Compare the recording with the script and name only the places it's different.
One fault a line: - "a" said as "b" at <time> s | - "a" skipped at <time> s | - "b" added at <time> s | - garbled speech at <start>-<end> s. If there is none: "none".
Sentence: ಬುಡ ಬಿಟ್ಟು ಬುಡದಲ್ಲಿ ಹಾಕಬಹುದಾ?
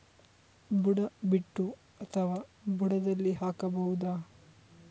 - "ಅಥವಾ" added at 2.0 s